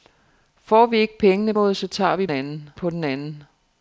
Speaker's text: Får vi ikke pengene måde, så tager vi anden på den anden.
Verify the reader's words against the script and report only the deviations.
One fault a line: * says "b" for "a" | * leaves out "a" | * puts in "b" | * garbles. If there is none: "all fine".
all fine